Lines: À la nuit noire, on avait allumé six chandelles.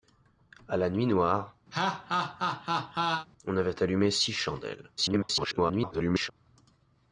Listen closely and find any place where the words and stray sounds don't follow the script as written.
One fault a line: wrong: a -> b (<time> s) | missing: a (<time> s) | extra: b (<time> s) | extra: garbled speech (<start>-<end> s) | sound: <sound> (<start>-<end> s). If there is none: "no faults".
sound: laugh (1.7-3.3 s)
extra: garbled speech (5.0-6.3 s)